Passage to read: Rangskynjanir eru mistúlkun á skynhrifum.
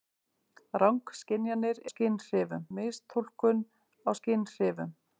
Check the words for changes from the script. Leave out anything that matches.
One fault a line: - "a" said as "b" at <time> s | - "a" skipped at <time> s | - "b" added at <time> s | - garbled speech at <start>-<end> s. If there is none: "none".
- "eru" said as "skynhrifum" at 1.9 s